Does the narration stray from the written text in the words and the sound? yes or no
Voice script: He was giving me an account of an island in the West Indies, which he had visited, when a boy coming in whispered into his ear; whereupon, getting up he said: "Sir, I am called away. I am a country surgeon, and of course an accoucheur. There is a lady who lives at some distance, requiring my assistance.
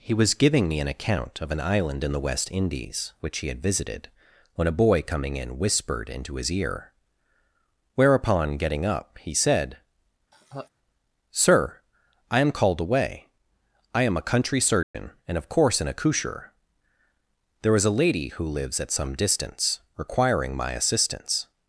yes